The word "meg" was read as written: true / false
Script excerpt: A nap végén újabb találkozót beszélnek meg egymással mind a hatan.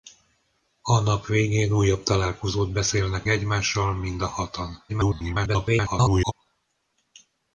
false